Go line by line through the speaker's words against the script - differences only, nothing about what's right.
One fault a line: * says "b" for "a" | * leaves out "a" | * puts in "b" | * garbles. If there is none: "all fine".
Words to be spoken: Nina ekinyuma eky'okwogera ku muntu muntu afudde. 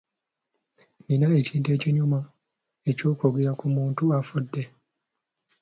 * puts in "ekintu"
* leaves out "muntu"